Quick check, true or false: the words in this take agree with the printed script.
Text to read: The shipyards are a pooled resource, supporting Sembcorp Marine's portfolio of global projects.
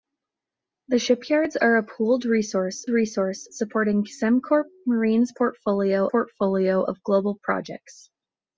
false